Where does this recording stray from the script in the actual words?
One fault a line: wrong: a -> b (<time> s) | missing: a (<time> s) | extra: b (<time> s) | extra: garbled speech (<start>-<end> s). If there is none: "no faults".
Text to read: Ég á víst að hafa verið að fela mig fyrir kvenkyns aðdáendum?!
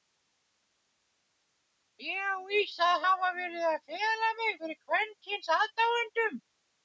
no faults